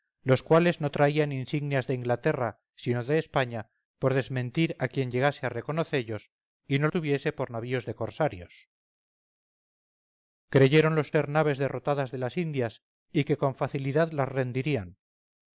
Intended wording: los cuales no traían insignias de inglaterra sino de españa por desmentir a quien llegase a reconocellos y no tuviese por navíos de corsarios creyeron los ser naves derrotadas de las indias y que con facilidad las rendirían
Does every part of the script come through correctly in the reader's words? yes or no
yes